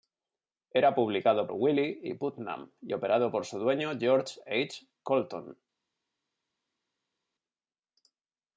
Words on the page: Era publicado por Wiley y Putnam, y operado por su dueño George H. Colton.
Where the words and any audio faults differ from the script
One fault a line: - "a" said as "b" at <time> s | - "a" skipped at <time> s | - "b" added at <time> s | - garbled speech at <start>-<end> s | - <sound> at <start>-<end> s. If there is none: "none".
- "por" skipped at 1.5 s